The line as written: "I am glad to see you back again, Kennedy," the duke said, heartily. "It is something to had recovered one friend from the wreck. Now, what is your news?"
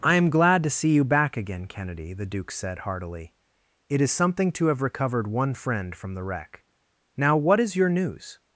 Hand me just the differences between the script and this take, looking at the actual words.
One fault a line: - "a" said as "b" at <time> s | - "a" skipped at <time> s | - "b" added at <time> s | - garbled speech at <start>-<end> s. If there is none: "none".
- "had" said as "have" at 4.7 s